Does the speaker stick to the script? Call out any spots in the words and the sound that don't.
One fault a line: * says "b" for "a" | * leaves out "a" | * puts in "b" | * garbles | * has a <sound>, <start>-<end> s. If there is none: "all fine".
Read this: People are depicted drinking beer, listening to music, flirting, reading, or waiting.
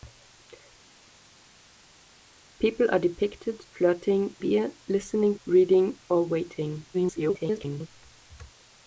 * says "flirting" for "drinking"
* leaves out "to music flirting"
* garbles